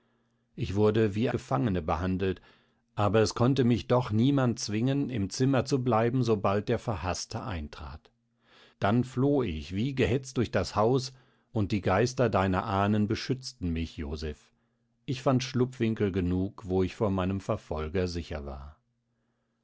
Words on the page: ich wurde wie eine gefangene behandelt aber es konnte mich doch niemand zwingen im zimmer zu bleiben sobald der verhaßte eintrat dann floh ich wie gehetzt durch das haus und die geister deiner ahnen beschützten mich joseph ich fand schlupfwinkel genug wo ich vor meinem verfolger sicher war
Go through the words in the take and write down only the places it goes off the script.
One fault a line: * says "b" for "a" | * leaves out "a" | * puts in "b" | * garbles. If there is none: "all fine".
* leaves out "eine"